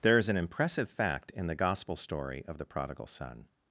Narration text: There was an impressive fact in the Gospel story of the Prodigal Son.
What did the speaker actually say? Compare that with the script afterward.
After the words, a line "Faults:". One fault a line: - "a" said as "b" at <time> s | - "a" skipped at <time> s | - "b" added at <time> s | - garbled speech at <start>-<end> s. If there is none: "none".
There is an impressive fact in the Gospel story of the Prodigal Son.
Faults:
- "was" said as "is" at 0.2 s